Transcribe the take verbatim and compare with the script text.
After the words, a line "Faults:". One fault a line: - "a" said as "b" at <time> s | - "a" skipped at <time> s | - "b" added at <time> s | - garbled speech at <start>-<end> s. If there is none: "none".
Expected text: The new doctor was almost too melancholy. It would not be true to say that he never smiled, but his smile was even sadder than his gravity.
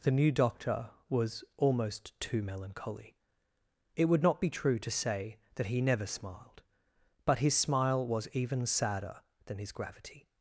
The new doctor was almost too melancholy. It would not be true to say that he never smiled, but his smile was even sadder than his gravity.
Faults:
none